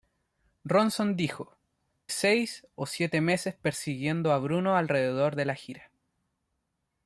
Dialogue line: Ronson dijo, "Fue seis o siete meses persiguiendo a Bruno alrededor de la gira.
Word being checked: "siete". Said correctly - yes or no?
yes